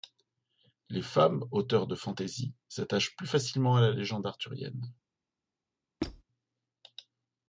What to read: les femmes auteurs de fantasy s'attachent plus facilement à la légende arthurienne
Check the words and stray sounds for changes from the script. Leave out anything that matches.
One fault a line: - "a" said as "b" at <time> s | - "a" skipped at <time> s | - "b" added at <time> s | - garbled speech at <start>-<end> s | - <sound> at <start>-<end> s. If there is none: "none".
- squeak at 6.0-6.2 s